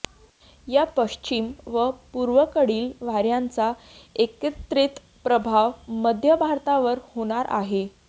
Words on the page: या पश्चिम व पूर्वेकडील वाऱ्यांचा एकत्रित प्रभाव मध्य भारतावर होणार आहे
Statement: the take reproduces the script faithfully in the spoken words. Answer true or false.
true